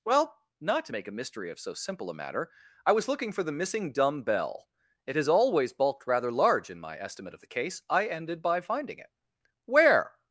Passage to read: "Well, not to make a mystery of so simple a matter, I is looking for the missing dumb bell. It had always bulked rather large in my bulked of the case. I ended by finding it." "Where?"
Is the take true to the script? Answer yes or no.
no